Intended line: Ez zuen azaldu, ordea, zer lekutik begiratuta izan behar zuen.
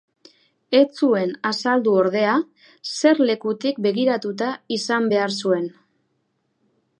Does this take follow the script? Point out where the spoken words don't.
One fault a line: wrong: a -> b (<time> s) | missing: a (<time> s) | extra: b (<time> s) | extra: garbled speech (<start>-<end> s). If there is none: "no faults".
no faults